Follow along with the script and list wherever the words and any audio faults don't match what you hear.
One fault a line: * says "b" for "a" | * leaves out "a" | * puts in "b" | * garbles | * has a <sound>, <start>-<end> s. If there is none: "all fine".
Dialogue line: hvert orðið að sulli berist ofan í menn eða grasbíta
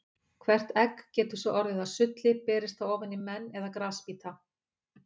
* puts in "egg getur svo"
* puts in "það"